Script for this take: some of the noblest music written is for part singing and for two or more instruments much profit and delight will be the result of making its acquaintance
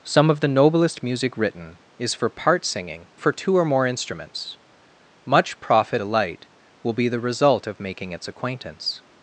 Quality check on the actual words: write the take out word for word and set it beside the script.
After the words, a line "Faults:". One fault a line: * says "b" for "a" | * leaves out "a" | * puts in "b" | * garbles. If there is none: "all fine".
some of the noblest music written is for part singing for two or more instruments much profit delight will be the result of making its acquaintance
Faults:
* leaves out "and"
* leaves out "and"